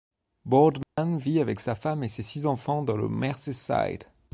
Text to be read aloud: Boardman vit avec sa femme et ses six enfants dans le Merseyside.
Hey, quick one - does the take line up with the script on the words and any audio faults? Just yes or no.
no